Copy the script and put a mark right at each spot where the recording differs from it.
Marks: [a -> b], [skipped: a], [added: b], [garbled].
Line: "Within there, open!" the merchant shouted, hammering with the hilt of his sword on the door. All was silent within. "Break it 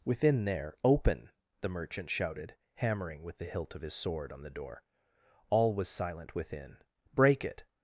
"Within there, open!" the merchant shouted, hammering with the hilt of his sword on the door. All was silent within. "Break it